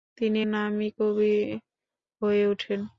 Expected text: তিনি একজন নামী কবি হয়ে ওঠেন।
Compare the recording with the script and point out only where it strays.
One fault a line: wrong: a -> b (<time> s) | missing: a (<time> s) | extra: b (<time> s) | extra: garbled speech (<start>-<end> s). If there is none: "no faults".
missing: একজন (0.4 s)